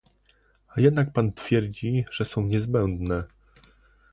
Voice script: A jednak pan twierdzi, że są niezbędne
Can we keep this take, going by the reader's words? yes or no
yes